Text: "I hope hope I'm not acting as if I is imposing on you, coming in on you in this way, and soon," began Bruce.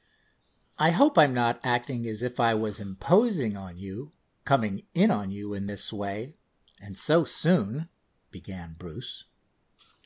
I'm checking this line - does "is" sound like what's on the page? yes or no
no